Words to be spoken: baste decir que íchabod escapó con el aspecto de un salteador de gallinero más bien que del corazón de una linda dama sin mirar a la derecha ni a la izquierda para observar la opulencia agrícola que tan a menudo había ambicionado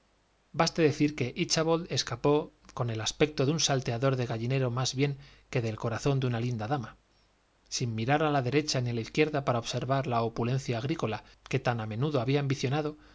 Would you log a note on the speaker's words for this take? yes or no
no